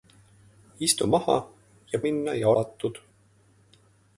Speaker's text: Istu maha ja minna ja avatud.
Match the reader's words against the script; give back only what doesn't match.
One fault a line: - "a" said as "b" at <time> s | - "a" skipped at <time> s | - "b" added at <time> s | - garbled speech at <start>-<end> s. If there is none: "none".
none